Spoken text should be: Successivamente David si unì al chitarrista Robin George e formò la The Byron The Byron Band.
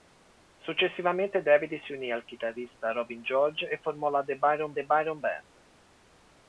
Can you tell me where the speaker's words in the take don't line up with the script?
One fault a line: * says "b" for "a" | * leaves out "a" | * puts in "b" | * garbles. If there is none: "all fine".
all fine